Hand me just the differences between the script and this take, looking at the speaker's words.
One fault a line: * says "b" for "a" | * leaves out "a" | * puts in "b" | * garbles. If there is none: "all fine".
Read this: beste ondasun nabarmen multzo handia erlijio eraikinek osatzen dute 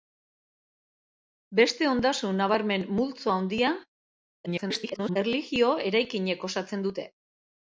* garbles